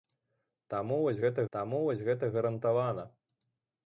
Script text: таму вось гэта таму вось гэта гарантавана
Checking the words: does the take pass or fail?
pass